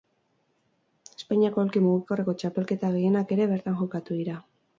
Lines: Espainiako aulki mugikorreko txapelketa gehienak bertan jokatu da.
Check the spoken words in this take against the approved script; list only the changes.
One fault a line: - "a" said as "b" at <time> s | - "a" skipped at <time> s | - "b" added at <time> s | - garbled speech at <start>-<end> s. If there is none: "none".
- "ere" added at 3.4 s
- "da" said as "dira" at 4.2 s